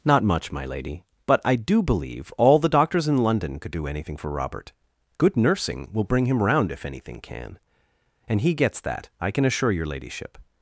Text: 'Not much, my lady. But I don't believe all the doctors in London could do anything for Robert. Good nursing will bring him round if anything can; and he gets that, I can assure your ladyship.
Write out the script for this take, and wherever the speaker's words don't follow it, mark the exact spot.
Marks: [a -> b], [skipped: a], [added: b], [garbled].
'Not much, my lady. But I [don't -> do] believe all the doctors in London could do anything for Robert. Good nursing will bring him round if anything can; and he gets that, I can assure your ladyship.